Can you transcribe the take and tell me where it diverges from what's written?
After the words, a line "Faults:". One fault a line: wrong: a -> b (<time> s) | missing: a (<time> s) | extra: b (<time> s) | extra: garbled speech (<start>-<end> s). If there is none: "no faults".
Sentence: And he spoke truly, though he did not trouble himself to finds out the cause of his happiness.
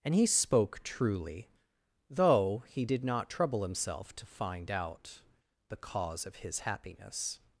And he spoke truly, though he did not trouble himself to find out the cause of his happiness.
Faults:
wrong: finds -> find (4.2 s)